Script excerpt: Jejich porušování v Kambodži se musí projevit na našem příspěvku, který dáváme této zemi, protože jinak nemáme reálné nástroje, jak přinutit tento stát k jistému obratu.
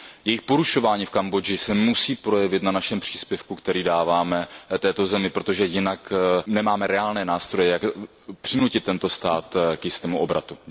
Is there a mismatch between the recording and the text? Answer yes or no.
no